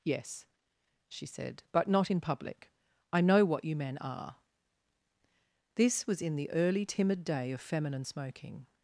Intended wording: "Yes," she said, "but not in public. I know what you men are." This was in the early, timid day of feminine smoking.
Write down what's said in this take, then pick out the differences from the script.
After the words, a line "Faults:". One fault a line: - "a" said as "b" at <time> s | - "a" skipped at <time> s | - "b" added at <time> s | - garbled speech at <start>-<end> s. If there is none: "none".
"Yes," she said, "but not in public. I know what you men are." This was in the early, timid day of feminine smoking.
Faults:
none